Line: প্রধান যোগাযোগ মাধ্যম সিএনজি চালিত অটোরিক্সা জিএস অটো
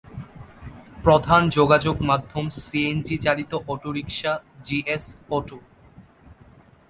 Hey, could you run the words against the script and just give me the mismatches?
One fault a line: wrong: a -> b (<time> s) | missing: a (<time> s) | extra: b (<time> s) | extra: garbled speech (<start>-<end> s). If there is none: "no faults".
no faults